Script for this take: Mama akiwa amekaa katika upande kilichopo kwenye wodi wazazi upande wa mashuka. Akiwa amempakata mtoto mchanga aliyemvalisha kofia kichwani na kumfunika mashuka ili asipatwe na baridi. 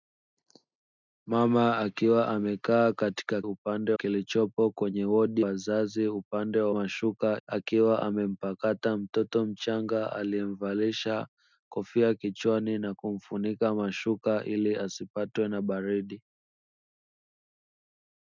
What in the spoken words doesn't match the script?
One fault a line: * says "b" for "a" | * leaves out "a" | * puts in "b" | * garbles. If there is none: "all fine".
all fine